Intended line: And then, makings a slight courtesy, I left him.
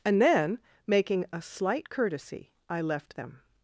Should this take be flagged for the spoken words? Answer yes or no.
yes